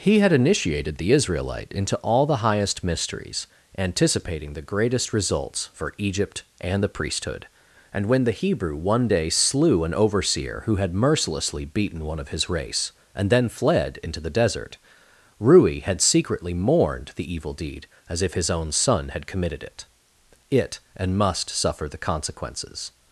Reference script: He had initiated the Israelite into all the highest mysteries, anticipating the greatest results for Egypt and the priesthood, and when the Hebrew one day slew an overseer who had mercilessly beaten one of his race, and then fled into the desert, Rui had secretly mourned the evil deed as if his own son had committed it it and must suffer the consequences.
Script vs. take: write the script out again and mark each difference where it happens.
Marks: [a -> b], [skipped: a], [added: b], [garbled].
He had initiated the Israelite into all the highest mysteries, anticipating the greatest results for Egypt and the priesthood, and when the Hebrew one day slew an overseer who had mercilessly beaten one of his race, and then fled into the desert, Rui had secretly mourned the evil deed as if his own son had committed it it and must suffer the consequences.